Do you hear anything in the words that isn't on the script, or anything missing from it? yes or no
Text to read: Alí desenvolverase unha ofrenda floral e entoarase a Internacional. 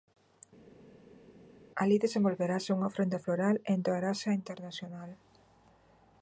no